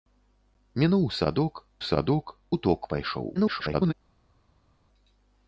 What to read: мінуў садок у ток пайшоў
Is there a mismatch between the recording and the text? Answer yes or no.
yes